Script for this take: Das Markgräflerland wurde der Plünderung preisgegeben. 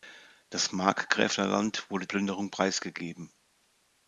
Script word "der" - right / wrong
wrong